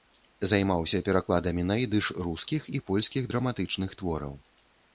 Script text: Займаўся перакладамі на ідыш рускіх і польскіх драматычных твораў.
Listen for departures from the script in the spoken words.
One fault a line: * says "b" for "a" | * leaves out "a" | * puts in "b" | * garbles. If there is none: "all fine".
all fine